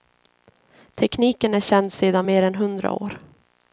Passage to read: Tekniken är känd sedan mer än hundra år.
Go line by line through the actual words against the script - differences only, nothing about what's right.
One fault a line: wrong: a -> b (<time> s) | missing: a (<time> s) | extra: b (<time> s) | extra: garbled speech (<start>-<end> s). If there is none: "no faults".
no faults